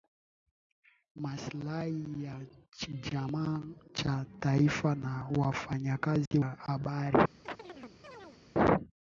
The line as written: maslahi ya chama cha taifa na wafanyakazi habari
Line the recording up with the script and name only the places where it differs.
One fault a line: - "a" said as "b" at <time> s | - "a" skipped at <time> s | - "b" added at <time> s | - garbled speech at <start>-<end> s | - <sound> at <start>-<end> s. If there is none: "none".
- dropout at 6.3-6.3 s
- chirp at 7.5-8.4 s